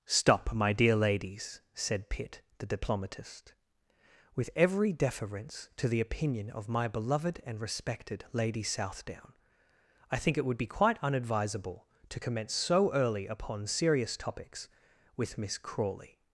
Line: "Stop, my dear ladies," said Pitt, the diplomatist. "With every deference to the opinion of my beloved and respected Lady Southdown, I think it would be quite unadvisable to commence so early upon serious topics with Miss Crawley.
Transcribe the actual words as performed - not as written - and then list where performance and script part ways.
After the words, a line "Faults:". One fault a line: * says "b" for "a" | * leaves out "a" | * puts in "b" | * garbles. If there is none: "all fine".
"Stop, my dear ladies," said Pitt, the diplomatist. "With every deference to the opinion of my beloved and respected Lady Southdown, I think it would be quite unadvisable to commence so early upon serious topics with Miss Crawley.
Faults:
all fine